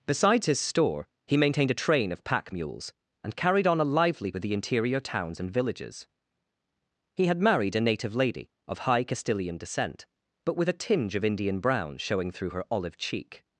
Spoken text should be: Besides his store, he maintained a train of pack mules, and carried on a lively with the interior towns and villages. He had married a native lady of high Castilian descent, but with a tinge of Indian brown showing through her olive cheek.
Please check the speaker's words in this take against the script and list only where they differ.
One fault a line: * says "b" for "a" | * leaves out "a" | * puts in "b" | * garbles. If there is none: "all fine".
all fine